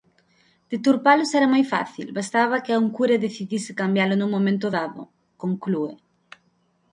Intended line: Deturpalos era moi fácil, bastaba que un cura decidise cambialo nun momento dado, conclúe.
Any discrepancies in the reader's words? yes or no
no